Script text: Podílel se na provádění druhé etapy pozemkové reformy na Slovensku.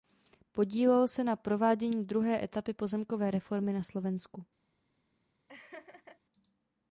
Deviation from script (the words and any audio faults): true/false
true